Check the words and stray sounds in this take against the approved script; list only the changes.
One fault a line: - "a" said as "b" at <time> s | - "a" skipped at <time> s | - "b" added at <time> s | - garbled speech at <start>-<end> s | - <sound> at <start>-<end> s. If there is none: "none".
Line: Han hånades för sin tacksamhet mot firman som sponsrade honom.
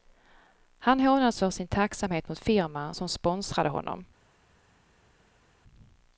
none